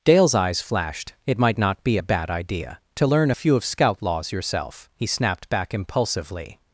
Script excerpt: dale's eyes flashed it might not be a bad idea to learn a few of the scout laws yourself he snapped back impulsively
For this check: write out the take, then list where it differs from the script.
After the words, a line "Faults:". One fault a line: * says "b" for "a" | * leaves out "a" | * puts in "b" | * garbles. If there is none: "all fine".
dale's eyes flashed it might not be a bad idea to learn a few of scout laws yourself he snapped back impulsively
Faults:
* leaves out "the"